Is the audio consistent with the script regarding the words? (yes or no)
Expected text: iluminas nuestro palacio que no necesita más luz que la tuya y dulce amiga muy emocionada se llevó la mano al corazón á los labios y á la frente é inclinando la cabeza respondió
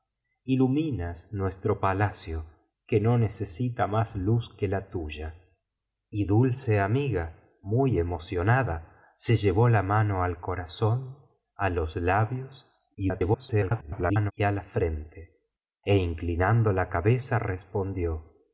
no